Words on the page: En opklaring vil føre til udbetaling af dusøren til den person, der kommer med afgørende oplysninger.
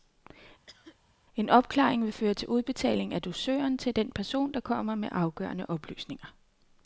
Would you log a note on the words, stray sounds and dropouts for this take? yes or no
yes